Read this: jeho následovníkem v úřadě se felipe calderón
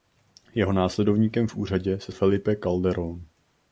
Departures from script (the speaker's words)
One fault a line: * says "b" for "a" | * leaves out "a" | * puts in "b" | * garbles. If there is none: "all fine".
all fine